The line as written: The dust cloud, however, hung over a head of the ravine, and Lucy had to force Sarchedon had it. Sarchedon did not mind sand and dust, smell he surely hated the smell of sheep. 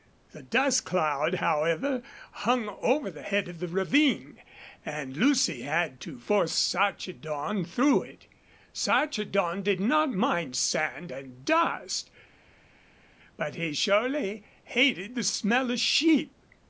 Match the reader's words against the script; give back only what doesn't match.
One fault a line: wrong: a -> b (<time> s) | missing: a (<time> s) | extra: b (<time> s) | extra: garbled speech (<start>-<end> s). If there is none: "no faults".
wrong: a -> the (3.1 s)
wrong: had -> through (7.7 s)
wrong: smell -> but (13.4 s)